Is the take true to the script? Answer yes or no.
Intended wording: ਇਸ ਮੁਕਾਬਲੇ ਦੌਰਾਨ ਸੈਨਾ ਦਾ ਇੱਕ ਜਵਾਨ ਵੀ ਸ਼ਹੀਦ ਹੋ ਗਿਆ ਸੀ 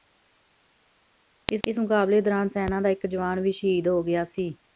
no